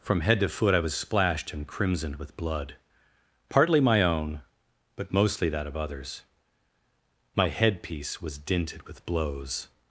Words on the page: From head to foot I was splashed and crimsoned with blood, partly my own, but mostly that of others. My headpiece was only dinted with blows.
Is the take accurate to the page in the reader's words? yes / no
no